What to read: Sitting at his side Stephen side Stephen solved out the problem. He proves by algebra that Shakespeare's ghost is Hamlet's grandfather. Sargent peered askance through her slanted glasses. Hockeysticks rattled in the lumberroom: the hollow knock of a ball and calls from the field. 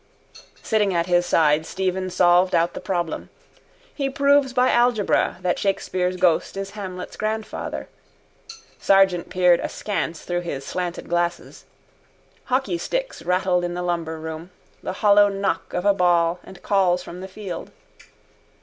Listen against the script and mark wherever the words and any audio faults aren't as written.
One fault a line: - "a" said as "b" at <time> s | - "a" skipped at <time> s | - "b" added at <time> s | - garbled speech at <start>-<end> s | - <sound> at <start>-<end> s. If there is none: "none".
- "side Stephen" skipped at 2.1 s
- "her" said as "his" at 10.4 s